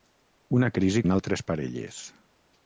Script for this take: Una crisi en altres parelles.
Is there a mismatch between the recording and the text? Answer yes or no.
no